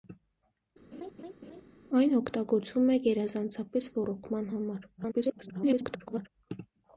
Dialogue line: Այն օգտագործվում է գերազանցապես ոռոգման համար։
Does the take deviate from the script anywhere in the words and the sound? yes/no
yes